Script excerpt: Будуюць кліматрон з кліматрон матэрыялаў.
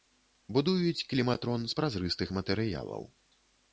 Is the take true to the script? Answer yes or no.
no